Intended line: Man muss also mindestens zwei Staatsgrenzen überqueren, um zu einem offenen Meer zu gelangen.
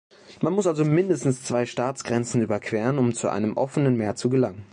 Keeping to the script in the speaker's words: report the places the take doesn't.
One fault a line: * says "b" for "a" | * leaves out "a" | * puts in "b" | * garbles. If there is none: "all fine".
all fine